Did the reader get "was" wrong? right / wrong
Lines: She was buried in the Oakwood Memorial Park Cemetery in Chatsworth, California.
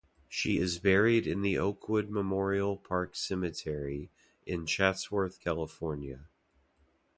wrong